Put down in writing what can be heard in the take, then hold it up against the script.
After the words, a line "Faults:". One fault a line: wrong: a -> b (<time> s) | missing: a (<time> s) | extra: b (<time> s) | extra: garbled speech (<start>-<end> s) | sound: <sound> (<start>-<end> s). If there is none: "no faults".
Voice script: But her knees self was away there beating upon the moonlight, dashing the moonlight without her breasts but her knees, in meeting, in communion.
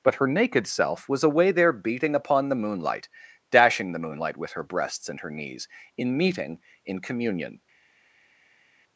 But her naked self was away there beating upon the moonlight, dashing the moonlight with her breasts and her knees, in meeting, in communion.
Faults:
wrong: knees -> naked (0.3 s)
wrong: without -> with (4.4 s)
wrong: but -> and (5.1 s)